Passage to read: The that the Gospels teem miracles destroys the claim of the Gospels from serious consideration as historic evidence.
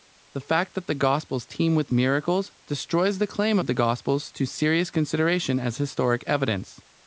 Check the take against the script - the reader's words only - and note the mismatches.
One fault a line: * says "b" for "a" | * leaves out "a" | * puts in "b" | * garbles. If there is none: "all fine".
* puts in "fact"
* puts in "with"
* says "to" for "from"